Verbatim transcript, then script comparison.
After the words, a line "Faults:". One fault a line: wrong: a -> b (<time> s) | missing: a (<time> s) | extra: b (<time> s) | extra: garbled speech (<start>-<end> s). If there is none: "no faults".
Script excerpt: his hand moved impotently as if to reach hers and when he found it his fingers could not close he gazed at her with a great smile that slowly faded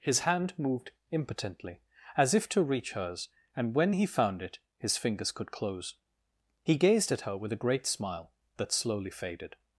his hand moved impotently as if to reach hers and when he found it his fingers could close he gazed at her with a great smile that slowly faded
Faults:
missing: not (5.5 s)